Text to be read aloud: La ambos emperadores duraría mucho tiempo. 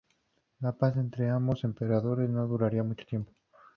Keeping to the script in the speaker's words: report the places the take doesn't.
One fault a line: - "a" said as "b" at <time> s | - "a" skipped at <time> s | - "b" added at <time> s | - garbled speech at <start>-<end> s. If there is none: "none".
- "paz entre" added at 0.7 s
- "no" added at 2.3 s